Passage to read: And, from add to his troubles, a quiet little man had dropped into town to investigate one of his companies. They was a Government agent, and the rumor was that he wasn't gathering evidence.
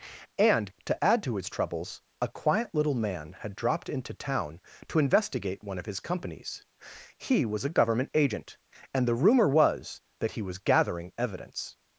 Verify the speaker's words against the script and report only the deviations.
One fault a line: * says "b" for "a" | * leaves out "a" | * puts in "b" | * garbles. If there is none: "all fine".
* says "to" for "from"
* says "He" for "They"
* says "was" for "wasn't"